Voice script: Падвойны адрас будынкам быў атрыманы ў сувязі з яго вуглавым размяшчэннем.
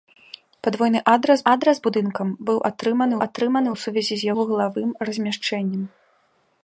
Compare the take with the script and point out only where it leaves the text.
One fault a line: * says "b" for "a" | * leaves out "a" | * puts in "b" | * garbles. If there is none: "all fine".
* puts in "адрас"
* puts in "атрыманы"
* leaves out "яго"